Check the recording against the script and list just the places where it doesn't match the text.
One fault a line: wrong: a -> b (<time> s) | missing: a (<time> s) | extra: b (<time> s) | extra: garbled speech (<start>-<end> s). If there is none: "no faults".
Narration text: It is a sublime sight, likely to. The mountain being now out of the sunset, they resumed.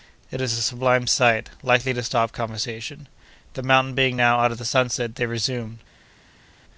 extra: stop conversation (2.0 s)